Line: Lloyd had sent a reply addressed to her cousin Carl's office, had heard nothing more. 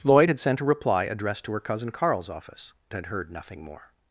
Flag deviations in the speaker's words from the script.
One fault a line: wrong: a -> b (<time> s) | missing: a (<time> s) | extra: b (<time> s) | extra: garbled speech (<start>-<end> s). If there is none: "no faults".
no faults